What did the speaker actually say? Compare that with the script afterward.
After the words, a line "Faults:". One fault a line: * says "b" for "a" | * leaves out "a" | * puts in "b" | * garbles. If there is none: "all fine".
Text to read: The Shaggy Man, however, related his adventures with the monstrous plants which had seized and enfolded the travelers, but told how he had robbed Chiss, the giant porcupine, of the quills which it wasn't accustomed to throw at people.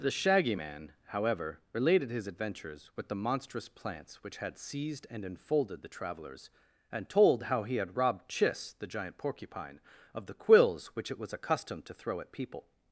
The Shaggy Man, however, related his adventures with the monstrous plants which had seized and enfolded the travelers, and told how he had robbed Chiss, the giant porcupine, of the quills which it was accustomed to throw at people.
Faults:
* says "and" for "but"
* says "was" for "wasn't"